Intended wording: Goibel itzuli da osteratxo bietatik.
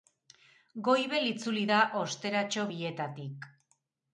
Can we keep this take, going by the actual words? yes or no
yes